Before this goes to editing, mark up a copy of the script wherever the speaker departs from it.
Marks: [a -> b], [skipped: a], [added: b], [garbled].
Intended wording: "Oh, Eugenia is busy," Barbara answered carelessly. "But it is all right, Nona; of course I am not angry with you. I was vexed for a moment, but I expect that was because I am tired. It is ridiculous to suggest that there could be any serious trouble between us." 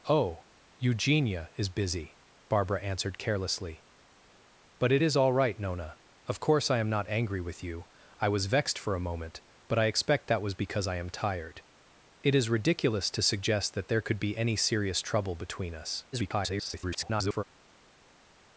"Oh, Eugenia is busy," Barbara answered carelessly. "But it is all right, Nona; of course I am not angry with you. I was vexed for a moment, but I expect that was because I am tired. It is ridiculous to suggest that there could be any serious trouble between us." [garbled]